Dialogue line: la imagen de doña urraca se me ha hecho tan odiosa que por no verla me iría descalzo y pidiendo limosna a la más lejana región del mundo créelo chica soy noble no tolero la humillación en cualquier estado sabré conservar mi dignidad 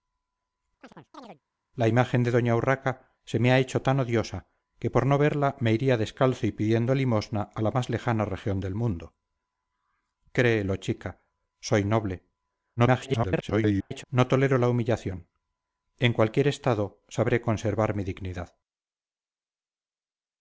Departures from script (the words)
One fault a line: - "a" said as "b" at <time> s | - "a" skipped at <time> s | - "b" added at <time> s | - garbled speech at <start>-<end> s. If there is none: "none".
- garbled speech at 12.8-14.0 s